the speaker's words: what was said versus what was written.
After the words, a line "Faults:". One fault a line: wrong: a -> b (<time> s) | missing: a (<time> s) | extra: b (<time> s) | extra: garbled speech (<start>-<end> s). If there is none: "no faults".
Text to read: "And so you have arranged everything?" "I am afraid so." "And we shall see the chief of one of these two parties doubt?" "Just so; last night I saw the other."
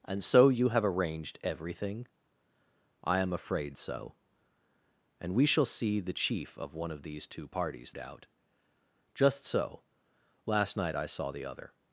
"And so you have arranged everything?" "I am afraid so." "And we shall see the chief of one of these two parties doubt?" "Just so; last night I saw the other."
Faults:
no faults